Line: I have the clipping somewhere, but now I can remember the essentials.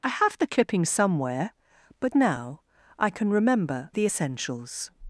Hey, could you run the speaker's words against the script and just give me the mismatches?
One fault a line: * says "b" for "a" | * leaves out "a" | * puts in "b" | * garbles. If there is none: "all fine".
all fine